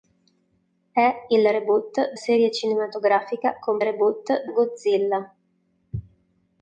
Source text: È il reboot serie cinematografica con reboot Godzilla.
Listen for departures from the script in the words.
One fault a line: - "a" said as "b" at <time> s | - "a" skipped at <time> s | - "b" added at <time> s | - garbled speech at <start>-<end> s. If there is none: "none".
none